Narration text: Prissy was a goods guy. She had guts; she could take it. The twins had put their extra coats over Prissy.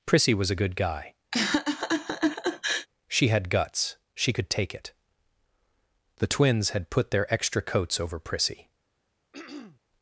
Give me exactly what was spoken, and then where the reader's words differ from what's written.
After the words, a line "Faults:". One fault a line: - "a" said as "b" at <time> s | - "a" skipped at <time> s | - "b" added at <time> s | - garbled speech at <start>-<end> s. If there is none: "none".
Prissy was a good guy. She had guts; she could take it. The twins had put their extra coats over Prissy.
Faults:
- "goods" said as "good" at 0.5 s